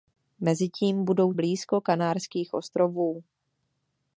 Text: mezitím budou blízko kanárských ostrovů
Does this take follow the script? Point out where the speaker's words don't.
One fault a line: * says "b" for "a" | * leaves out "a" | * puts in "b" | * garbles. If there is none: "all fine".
all fine